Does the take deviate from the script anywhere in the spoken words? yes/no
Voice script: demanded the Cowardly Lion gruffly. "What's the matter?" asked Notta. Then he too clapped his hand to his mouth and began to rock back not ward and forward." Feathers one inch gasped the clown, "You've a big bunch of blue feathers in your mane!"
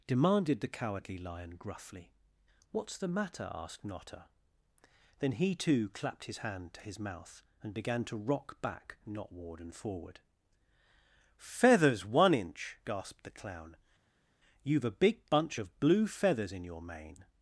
no